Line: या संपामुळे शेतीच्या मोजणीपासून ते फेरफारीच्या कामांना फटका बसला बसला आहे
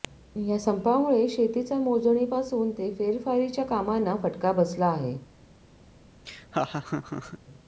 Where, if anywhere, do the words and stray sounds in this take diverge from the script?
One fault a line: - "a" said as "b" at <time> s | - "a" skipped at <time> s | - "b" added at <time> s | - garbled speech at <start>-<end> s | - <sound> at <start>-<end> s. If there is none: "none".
- "बसला" skipped at 4.9 s
- laugh at 6.3-7.4 s